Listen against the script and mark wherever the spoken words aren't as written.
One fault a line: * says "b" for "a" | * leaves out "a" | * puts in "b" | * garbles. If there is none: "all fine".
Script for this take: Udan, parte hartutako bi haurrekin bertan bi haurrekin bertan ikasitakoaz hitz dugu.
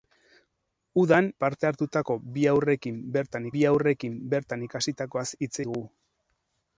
all fine